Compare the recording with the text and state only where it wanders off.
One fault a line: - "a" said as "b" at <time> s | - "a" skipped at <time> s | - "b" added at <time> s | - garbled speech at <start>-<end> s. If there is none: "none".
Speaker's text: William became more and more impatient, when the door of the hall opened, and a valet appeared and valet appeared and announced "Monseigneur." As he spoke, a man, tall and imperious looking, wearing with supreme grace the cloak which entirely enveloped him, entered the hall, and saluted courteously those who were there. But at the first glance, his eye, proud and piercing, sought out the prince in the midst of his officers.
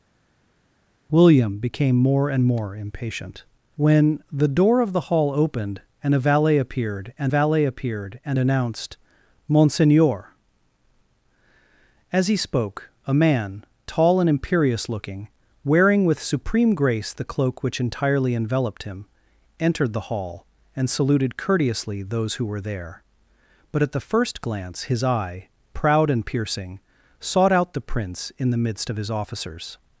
none